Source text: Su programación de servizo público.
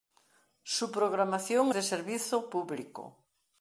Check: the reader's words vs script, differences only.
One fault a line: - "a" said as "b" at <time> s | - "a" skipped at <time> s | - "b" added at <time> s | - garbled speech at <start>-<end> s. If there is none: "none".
none